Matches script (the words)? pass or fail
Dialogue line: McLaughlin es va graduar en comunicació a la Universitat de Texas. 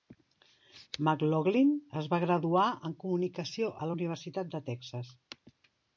pass